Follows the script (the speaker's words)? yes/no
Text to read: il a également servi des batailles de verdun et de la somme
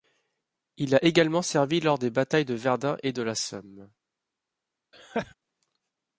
no